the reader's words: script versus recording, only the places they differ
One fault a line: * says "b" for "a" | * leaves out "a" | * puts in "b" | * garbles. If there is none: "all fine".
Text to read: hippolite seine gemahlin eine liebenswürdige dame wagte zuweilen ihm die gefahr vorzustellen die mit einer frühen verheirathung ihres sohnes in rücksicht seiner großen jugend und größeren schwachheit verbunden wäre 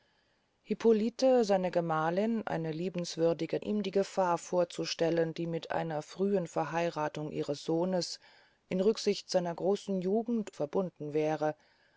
* leaves out "dame wagte zuweilen"
* leaves out "und größeren schwachheit"